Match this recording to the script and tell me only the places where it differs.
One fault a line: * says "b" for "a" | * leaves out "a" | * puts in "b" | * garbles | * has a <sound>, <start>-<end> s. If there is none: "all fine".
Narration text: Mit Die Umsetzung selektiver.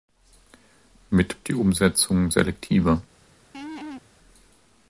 * has a laugh, 3.5-4.0 s